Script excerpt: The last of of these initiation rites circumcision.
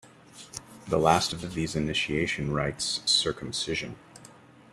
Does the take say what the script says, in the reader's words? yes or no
yes